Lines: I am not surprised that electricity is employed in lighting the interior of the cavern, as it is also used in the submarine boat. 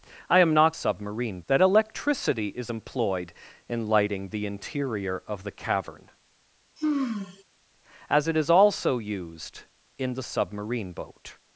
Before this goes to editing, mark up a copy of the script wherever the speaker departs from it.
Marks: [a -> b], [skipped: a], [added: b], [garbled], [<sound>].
I am not [surprised -> submarine] that electricity is employed in lighting the interior of the cavern, [sigh] as it is also used in the submarine boat.